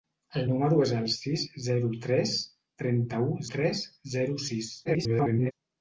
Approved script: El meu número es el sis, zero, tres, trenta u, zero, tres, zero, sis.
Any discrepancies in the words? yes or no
yes